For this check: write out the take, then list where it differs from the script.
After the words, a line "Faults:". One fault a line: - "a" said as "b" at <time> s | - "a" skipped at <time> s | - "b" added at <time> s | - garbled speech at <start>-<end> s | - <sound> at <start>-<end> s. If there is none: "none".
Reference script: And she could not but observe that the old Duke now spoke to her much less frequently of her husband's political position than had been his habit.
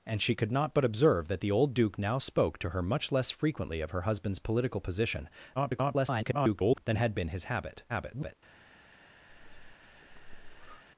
And she could not but observe that the old Duke now spoke to her much less frequently of her husband's political position [garbled] than had been his habit. [garbled]
Faults:
- garbled speech at 5.6-6.8 s
- garbled speech at 7.9-8.4 s
- breath at 9.3-10.8 s